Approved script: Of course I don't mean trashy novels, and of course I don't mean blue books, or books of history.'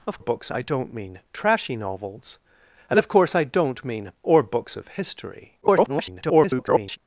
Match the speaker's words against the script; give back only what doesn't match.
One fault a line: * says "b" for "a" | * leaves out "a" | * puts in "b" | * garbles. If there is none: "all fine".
* says "books" for "course"
* leaves out "blue books"
* garbles